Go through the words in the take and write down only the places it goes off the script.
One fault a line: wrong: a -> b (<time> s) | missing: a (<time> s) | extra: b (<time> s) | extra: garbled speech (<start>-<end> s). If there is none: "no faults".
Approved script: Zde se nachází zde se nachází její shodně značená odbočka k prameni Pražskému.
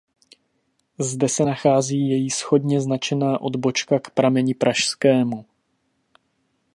missing: zde se nachází (2.1 s)